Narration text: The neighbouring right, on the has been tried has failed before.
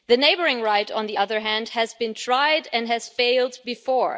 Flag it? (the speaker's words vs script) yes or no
yes